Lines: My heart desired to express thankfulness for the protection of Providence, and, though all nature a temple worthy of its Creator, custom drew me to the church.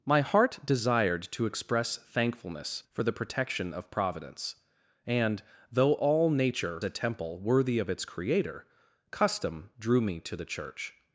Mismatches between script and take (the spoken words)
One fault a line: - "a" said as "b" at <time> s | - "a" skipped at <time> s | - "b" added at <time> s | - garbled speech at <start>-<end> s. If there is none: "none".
none